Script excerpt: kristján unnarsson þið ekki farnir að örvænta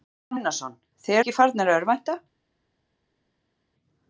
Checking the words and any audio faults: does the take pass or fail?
pass